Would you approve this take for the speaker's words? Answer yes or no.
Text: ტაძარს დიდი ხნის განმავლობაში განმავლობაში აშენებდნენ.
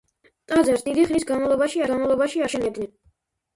yes